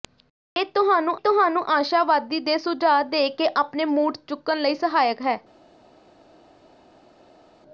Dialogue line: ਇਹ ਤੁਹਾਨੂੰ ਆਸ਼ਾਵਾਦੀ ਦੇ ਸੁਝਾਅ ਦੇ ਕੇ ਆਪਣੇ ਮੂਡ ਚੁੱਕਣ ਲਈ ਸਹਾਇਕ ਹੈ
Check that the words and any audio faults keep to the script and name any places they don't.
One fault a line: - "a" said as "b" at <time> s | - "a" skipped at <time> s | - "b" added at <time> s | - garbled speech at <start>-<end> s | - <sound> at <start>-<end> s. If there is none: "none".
- "ਤੁਹਾਨੂੰ" added at 1.2 s